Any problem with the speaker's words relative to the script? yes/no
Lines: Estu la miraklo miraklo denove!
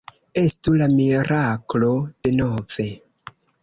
yes